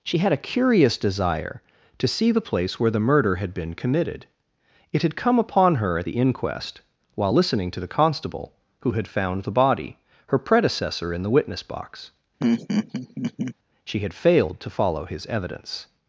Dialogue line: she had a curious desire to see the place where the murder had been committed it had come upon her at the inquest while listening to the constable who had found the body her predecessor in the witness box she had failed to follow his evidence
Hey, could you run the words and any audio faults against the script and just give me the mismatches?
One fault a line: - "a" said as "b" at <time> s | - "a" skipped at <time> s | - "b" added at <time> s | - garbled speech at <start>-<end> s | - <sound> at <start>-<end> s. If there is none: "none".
- laugh at 12.4-13.5 s